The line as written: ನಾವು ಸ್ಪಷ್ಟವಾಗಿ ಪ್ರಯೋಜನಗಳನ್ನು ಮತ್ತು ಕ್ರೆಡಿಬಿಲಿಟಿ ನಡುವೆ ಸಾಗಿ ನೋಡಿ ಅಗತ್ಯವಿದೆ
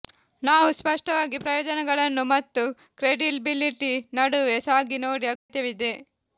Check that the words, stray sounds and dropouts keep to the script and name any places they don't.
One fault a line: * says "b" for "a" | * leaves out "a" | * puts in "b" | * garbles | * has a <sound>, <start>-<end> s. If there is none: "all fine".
* has a dropout, 5.4-5.5 s